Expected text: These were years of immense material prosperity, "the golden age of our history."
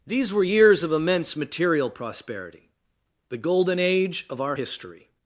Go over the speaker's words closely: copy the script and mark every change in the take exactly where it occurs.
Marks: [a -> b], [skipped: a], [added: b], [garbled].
These were years of immense material prosperity, "the golden age of our history."